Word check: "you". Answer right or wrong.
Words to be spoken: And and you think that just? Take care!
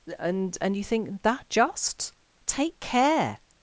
right